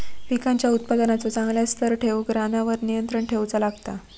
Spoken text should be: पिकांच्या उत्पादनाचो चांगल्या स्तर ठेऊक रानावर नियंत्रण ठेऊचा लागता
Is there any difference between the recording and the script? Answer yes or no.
no